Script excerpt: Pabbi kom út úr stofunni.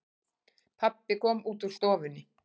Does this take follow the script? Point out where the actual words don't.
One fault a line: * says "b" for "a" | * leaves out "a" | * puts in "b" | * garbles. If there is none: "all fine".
all fine